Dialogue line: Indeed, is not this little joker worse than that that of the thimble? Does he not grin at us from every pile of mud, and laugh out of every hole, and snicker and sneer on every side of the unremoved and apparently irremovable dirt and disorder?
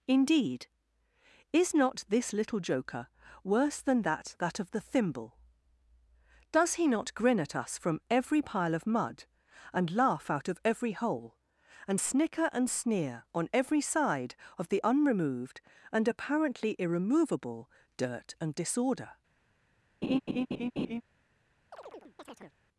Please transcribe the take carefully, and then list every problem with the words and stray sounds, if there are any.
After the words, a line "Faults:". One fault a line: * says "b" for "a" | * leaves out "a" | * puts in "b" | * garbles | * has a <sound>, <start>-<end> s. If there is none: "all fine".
Indeed, is not this little joker worse than that that of the thimble? Does he not grin at us from every pile of mud, and laugh out of every hole, and snicker and sneer on every side of the unremoved and apparently irremovable dirt and disorder?
Faults:
* has a laugh, 20.0-21.0 s
* has a chirp, 21.7-22.6 s